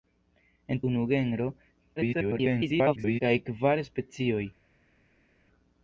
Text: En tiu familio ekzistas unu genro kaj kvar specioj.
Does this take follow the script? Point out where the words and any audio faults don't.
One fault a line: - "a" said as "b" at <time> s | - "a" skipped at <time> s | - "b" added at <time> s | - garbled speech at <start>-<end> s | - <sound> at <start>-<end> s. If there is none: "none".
- "tiu familio ekzistas" skipped at 0.8 s
- garbled speech at 2.0-3.2 s